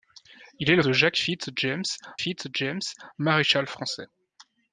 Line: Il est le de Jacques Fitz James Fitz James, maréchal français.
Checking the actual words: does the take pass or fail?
pass